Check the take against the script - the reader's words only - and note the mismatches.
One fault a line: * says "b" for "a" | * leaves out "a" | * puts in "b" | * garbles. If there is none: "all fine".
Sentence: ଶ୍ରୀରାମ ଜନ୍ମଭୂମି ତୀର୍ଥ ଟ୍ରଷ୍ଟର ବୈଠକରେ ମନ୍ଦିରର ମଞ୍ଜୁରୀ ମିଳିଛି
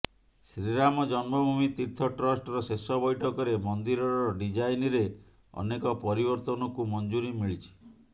* puts in "ଶେଷ"
* puts in "ଡିଜାଇନରେ ଅନେକ ପରିବର୍ତ୍ତନକୁ"